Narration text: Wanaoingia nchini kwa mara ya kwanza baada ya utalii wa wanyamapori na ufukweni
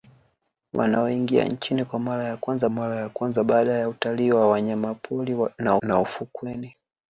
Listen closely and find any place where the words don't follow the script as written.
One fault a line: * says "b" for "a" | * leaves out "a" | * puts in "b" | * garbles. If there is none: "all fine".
* puts in "mara ya kwanza"
* puts in "na"